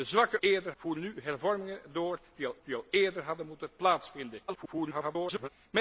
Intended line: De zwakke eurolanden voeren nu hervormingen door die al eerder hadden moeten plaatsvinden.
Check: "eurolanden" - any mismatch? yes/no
yes